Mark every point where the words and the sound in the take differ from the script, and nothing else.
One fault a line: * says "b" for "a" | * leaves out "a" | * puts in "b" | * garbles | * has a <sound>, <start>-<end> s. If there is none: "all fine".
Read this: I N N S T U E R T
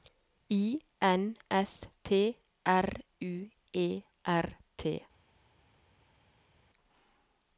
* leaves out "N"
* puts in "R"